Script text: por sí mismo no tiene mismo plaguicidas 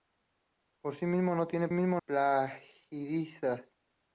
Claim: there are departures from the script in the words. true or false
false